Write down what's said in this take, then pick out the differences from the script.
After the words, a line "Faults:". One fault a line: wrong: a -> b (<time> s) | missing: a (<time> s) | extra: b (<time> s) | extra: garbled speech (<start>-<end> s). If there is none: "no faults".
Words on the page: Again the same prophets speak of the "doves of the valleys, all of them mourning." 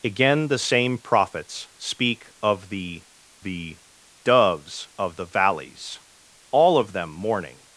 Again the same prophets speak of the the "doves of the valleys, all of them mourning."
Faults:
extra: the (3.4 s)